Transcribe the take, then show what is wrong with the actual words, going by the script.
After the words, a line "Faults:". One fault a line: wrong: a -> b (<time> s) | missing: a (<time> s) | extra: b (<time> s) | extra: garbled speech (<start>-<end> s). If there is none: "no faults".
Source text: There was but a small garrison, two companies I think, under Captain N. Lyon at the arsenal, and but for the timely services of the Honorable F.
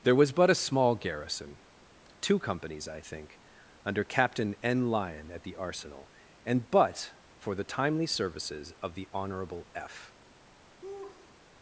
There was but a small garrison, two companies I think, under Captain N. Lyon at the arsenal, and but for the timely services of the Honorable F.
Faults:
no faults